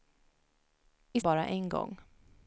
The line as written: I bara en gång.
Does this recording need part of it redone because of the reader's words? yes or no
no